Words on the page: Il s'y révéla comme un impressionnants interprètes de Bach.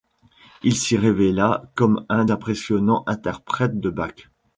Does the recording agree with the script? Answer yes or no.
yes